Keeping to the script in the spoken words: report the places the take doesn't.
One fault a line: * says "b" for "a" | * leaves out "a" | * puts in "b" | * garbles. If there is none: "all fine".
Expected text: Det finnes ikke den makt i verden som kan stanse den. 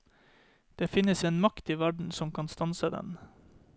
* leaves out "ikke"